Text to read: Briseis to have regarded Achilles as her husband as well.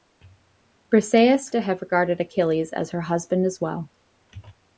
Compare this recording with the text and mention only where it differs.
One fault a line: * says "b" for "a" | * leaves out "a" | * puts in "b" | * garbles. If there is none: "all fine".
all fine